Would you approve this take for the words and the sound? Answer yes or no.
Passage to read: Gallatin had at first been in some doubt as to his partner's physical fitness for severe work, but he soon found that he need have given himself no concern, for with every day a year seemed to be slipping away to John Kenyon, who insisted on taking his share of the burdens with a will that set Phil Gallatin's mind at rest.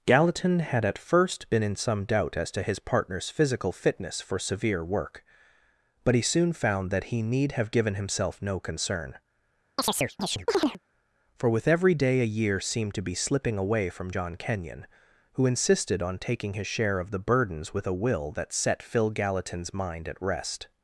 no